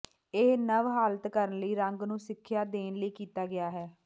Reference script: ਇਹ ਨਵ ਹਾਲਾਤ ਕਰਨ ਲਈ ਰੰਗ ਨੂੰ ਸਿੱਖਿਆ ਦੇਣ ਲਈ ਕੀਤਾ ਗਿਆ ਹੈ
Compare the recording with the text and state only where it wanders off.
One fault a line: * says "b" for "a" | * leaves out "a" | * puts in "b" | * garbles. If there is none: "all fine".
all fine